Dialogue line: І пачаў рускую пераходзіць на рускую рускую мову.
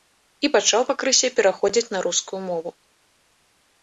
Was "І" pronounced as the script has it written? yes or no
yes